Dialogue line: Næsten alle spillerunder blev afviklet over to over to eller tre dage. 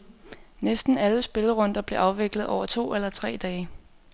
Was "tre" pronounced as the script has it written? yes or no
yes